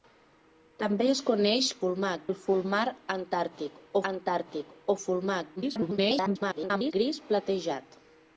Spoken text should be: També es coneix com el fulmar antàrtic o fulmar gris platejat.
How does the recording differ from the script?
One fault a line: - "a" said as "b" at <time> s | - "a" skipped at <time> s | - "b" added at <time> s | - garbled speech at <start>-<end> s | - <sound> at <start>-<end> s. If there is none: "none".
- "com" said as "fulmar" at 1.8 s
- "antàrtic" added at 4.1 s
- garbled speech at 5.6-6.9 s